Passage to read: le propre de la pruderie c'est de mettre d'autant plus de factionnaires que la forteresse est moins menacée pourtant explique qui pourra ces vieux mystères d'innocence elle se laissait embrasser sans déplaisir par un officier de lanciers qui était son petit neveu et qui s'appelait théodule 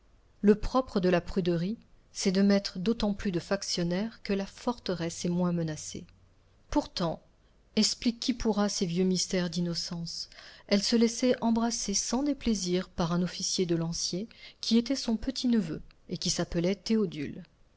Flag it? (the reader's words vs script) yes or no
no